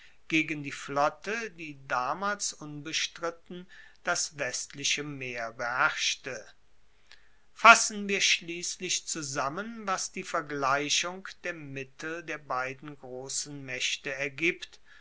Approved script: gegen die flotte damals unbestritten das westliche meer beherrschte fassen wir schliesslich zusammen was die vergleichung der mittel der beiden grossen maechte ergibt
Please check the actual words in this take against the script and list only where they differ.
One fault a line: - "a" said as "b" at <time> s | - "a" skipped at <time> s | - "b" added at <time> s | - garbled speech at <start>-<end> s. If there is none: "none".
- "die" added at 1.5 s